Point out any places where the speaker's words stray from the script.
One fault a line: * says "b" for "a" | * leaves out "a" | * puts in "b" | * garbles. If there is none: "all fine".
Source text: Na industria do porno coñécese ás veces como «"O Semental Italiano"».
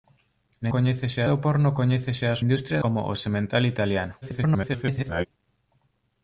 * says "coñécese" for "industria"
* says "industria" for "veces"
* garbles